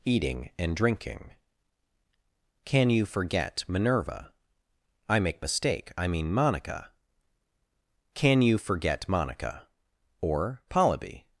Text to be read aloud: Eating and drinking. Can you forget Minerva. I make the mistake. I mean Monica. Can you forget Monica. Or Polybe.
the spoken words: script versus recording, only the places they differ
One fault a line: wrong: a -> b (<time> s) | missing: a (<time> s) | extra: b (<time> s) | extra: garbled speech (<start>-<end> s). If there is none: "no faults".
missing: the (5.4 s)